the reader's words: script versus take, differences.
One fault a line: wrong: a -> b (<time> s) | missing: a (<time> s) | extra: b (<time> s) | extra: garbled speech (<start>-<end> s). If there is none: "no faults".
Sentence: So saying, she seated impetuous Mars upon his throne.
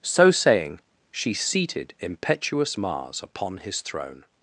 no faults